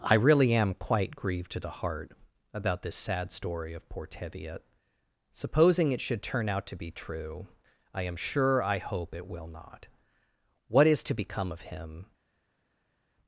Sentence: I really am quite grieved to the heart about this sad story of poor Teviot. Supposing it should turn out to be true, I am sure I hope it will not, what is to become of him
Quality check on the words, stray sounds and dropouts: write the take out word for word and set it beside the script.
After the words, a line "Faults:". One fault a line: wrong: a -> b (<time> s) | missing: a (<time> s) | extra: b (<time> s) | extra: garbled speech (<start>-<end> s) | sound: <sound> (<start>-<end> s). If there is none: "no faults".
I really am quite grieved to the heart about this sad story of poor Teviot. Supposing it should turn out to be true, I am sure I hope it will not, what is to become of him
Faults:
no faults